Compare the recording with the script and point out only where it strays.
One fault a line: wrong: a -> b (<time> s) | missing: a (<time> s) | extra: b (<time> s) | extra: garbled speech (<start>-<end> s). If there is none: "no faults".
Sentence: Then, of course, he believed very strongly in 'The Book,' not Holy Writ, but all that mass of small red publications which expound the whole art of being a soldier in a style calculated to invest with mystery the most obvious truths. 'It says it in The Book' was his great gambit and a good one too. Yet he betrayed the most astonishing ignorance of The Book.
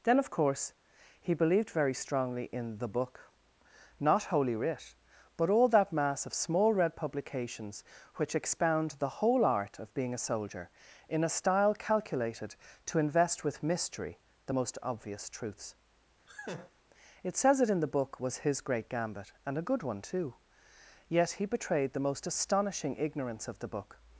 no faults